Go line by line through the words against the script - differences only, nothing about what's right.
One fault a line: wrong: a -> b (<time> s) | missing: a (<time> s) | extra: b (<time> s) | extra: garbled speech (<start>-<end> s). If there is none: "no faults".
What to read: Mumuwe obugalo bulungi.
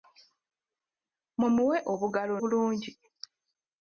no faults